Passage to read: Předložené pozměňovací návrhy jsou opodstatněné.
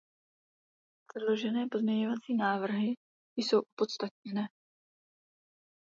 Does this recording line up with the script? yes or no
yes